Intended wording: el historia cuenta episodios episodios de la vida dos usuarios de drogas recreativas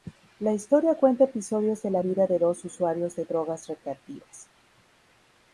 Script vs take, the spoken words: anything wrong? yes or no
yes